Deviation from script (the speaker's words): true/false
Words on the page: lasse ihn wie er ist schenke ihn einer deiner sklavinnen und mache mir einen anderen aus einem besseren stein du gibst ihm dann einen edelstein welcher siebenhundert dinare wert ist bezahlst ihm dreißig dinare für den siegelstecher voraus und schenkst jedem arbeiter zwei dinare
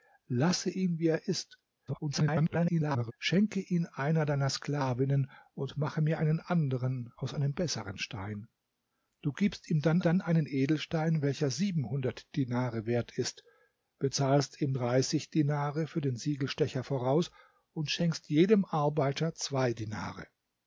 true